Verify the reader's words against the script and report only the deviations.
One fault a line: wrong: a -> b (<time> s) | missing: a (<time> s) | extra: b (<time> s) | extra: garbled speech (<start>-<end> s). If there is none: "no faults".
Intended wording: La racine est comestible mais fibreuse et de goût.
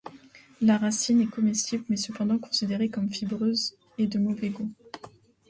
extra: cependant considérée comme (1.9 s)
extra: mauvais (4.2 s)